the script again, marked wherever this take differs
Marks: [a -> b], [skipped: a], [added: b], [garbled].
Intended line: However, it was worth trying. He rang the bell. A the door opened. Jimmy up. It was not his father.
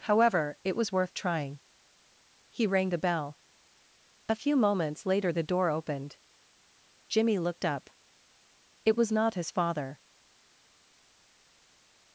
However, it was worth trying. He rang the bell. A [added: few moments later] the door opened. Jimmy [added: looked] up. It was not his father.